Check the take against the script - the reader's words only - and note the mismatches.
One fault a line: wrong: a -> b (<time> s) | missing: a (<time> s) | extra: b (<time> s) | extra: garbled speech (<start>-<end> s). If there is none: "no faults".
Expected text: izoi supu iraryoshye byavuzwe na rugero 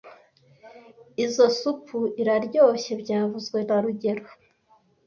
no faults